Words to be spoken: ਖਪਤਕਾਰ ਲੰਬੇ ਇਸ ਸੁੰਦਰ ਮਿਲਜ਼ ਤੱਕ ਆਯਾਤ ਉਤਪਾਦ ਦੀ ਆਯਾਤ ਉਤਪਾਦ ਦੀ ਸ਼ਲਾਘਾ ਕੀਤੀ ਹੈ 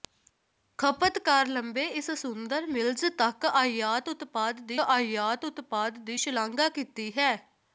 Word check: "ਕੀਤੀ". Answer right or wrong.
right